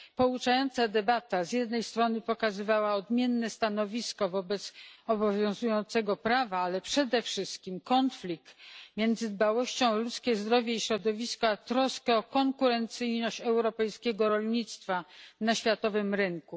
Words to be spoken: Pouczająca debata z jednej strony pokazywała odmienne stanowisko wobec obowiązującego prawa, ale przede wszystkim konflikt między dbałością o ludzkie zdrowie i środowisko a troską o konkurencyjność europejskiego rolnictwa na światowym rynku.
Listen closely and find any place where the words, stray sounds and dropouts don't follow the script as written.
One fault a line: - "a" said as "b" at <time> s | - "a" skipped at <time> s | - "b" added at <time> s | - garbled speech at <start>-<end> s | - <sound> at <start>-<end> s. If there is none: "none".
none